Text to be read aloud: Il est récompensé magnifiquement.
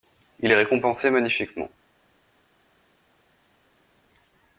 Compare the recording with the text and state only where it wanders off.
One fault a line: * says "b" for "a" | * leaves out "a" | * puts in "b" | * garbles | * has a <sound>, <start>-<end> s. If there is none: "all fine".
all fine